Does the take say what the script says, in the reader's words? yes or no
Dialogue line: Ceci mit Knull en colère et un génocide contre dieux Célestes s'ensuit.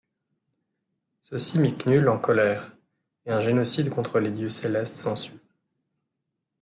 no